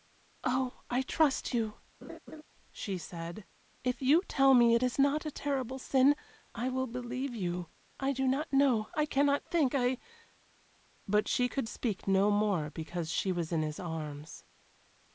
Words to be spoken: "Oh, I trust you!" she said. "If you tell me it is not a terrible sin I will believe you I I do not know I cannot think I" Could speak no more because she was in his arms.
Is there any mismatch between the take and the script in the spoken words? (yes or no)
yes